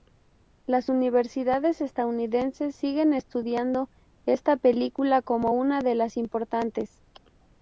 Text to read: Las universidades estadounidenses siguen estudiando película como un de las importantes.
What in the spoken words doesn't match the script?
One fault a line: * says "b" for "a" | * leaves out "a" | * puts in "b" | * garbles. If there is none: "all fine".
* puts in "esta"
* says "una" for "un"